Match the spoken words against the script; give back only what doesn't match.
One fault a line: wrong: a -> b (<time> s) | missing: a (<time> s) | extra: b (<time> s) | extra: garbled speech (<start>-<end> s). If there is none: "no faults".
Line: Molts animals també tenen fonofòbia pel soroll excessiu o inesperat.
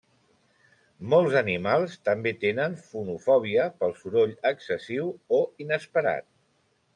no faults